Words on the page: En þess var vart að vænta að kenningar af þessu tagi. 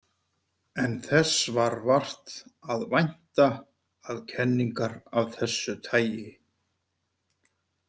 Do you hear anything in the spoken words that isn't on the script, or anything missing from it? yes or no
no